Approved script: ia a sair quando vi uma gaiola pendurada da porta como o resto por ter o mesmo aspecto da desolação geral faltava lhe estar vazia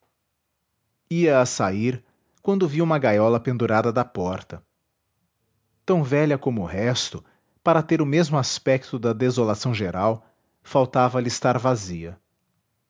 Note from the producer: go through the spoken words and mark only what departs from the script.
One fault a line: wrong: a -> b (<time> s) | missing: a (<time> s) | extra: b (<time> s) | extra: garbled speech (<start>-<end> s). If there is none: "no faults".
extra: tão velha (5.8 s)
wrong: por -> para (7.6 s)